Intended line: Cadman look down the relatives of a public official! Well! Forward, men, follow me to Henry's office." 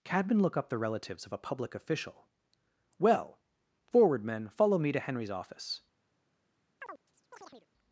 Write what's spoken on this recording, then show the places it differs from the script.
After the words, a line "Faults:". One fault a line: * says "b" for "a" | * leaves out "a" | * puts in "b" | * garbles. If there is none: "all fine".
Cadman look up the relatives of a public official! Well! Forward, men, follow me to Henry's office."
Faults:
* says "up" for "down"